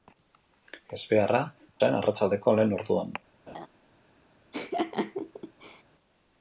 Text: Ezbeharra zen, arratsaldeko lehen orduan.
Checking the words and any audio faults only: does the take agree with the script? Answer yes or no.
no